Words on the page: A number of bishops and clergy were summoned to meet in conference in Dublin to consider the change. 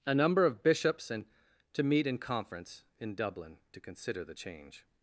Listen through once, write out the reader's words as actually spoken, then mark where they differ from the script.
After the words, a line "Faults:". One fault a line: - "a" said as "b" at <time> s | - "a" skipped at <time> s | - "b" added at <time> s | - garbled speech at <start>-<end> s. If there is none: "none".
A number of bishops and to meet in conference in Dublin to consider the change.
Faults:
- "clergy were summoned" skipped at 1.2 s